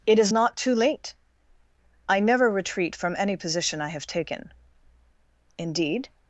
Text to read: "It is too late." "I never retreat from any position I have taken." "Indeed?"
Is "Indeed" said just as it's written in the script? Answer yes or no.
yes